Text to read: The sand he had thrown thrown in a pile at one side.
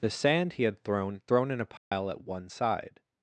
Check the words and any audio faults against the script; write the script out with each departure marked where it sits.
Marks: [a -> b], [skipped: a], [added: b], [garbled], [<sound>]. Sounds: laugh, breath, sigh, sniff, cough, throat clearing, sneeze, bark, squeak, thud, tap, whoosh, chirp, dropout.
The sand he had thrown thrown in a pile [dropout] at one side.